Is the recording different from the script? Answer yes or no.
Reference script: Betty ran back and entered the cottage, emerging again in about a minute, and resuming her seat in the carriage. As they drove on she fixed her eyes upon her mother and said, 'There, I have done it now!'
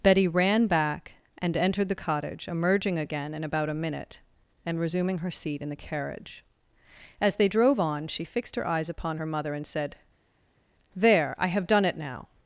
no